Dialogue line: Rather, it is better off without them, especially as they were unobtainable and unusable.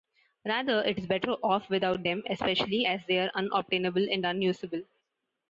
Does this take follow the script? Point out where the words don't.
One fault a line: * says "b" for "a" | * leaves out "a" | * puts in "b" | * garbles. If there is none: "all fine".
* says "are" for "were"